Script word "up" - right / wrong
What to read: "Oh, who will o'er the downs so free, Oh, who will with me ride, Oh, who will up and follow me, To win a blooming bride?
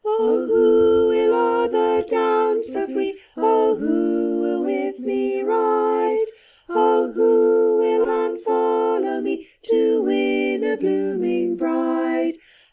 wrong